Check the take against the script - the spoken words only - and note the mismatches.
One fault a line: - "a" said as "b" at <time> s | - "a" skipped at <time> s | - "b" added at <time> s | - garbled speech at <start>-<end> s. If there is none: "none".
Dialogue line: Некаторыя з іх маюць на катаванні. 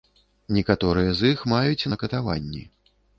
none